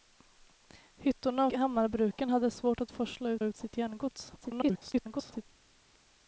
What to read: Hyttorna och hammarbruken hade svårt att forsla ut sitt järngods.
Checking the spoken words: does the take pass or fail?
fail